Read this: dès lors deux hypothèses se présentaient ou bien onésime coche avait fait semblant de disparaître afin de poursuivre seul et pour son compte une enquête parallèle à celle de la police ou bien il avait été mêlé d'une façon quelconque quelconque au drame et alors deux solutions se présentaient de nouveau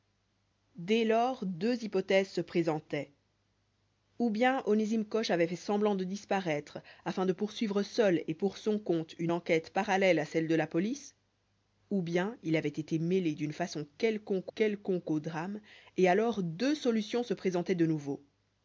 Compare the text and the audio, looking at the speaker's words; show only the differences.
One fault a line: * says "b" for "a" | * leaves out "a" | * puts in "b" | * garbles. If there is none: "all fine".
all fine